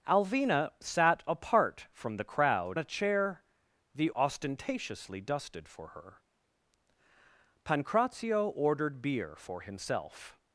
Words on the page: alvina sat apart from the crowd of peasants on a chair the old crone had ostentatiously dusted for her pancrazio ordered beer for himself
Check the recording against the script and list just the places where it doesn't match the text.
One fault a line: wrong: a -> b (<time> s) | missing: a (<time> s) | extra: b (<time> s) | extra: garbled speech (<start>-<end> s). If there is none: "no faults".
missing: of peasants on (2.8 s)
missing: old crone had (4.1 s)